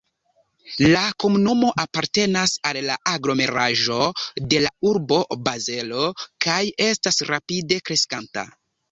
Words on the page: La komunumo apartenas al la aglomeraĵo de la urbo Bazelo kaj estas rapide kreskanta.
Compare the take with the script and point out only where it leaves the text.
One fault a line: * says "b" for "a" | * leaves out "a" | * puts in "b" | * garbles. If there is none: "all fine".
all fine